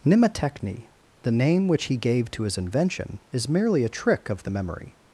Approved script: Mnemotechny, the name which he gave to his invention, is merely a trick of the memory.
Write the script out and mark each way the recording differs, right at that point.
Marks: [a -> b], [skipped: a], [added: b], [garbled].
Mnemotechny, the name which he gave to his invention, is merely a trick of the memory.